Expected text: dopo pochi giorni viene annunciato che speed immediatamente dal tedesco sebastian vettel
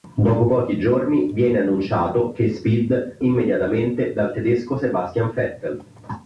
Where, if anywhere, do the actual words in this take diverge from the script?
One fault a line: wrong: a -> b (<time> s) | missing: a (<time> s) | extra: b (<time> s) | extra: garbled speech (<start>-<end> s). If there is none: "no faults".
no faults